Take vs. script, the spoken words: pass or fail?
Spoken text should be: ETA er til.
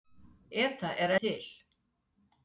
pass